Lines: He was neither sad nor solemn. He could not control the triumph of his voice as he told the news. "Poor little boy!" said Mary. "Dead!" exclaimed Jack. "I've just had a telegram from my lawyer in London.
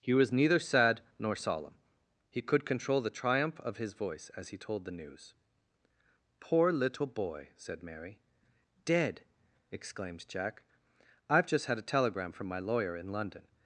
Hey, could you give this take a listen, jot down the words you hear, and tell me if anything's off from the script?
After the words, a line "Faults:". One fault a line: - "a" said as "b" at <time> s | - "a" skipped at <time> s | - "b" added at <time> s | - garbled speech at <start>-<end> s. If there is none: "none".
He was neither sad nor solemn. He could control the triumph of his voice as he told the news. "Poor little boy!" said Mary. "Dead!" exclaimed Jack. "I've just had a telegram from my lawyer in London.
Faults:
- "not" skipped at 2.6 s